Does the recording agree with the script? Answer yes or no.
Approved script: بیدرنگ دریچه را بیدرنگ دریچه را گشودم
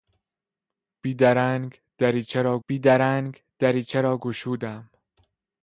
yes